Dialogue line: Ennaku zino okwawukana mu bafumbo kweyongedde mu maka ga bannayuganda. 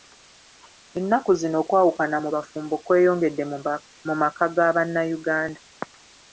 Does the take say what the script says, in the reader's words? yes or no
yes